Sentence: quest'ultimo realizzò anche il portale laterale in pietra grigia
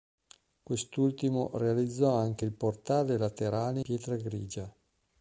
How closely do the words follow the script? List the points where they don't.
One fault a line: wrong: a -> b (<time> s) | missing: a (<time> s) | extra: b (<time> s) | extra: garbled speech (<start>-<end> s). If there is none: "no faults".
missing: in (3.8 s)